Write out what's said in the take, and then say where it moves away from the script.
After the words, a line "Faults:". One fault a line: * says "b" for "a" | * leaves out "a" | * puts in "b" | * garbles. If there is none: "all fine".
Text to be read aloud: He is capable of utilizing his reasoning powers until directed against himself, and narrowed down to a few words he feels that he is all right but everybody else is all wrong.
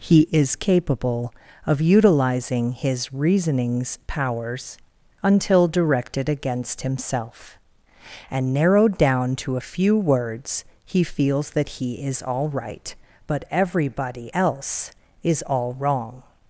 He is capable of utilizing his reasonings powers until directed against himself, and narrowed down to a few words he feels that he is all right but everybody else is all wrong.
Faults:
* says "reasonings" for "reasoning"